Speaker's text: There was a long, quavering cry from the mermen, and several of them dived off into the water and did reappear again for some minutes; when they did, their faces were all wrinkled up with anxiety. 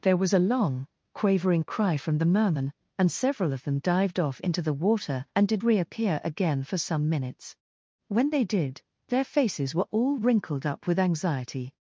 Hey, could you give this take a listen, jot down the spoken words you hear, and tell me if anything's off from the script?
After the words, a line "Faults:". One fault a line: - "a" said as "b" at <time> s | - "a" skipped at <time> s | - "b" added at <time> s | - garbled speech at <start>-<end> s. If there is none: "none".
There was a long, quavering cry from the mermen, and several of them dived off into the water and did reappear again for some minutes; when they did, their faces were all wrinkled up with anxiety.
Faults:
none